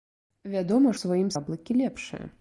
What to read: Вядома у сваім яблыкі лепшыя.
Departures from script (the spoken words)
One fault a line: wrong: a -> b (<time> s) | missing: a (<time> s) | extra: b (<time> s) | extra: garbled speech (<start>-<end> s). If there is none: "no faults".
no faults